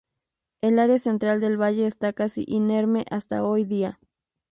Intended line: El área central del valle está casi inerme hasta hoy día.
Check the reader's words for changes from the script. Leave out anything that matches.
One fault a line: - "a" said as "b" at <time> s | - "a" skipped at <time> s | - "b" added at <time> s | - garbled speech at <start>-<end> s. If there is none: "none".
none